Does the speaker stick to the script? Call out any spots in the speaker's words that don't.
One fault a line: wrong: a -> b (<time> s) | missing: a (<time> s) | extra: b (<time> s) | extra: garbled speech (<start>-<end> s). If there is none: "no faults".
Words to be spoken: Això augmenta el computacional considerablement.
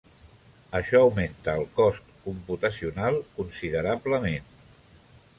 extra: cost (1.8 s)